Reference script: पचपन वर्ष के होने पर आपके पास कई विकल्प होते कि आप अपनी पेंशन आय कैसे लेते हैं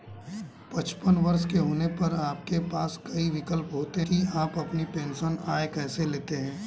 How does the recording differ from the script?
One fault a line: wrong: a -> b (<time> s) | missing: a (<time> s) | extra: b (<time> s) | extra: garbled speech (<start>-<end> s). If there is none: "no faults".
no faults